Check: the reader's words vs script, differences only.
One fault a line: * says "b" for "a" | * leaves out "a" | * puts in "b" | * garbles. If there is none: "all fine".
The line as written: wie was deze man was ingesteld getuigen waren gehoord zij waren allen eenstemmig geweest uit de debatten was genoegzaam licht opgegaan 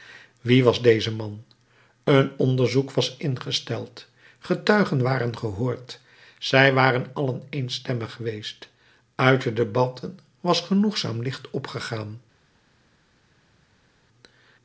* puts in "een onderzoek"